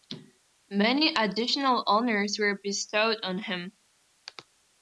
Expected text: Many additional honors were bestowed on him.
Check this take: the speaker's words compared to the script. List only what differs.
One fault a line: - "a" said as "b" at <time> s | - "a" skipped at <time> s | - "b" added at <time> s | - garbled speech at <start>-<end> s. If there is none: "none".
none